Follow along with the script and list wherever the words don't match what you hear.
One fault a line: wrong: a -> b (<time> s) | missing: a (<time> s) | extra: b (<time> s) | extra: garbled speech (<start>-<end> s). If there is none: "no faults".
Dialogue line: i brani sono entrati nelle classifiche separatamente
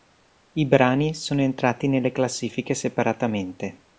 no faults